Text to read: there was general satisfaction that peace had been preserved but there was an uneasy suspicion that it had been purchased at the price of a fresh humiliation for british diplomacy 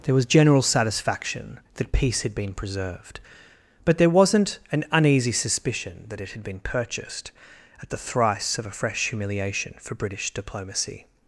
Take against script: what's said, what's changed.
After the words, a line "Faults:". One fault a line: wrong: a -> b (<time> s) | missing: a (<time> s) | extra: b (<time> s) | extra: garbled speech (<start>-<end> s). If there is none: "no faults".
there was general satisfaction that peace had been preserved but there wasn't an uneasy suspicion that it had been purchased at the thrice of a fresh humiliation for british diplomacy
Faults:
wrong: was -> wasn't (4.1 s)
wrong: price -> thrice (8.0 s)